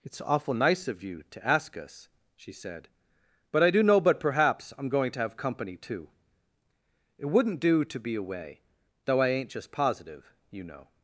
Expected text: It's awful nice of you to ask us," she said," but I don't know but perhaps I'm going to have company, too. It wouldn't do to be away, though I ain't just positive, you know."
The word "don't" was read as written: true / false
false